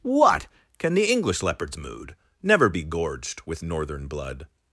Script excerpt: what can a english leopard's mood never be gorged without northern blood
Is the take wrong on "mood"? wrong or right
right